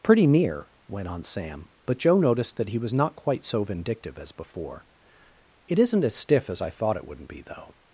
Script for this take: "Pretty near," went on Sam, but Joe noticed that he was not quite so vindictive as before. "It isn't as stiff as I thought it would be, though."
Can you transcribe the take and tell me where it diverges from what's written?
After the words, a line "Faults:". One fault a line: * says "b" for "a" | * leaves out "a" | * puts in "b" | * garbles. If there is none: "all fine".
"Pretty near," went on Sam, but Joe noticed that he was not quite so vindictive as before. "It isn't as stiff as I thought it wouldn't be, though."
Faults:
* says "wouldn't" for "would"